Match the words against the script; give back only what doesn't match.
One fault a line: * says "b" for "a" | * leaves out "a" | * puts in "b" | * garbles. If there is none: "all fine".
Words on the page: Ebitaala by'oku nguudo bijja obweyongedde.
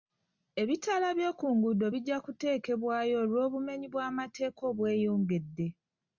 * puts in "kuteekebwayo olw'obumenyi bw'amateeka"